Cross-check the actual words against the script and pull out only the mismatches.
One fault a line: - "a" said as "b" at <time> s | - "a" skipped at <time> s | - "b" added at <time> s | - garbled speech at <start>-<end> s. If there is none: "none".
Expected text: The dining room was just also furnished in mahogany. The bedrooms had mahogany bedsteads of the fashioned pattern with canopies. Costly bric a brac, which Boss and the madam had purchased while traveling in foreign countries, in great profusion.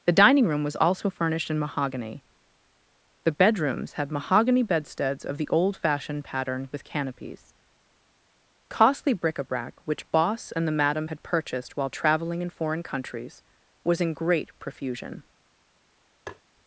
- "just" skipped at 0.8 s
- "old" added at 5.5 s
- "was" added at 13.8 s